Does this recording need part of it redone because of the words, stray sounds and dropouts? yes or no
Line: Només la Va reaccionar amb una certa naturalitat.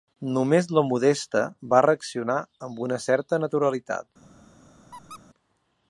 yes